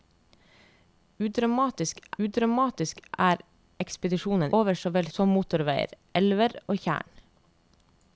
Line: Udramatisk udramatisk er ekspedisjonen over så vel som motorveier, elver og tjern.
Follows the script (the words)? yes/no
yes